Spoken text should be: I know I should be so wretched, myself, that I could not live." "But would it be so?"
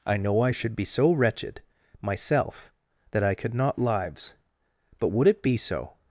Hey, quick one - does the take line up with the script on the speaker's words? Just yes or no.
no